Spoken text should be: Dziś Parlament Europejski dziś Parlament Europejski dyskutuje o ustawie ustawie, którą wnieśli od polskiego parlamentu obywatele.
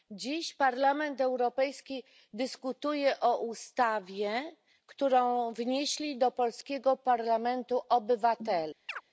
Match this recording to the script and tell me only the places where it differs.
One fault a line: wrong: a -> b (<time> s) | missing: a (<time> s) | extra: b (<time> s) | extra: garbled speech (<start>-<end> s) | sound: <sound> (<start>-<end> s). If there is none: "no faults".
missing: dziś Parlament Europejski (2.0 s)
missing: ustawie (4.6 s)
wrong: od -> do (6.2 s)
sound: chirp (8.9-9.0 s)